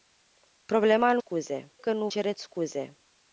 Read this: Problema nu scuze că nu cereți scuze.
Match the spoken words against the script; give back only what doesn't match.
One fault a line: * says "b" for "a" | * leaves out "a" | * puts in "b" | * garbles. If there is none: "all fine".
all fine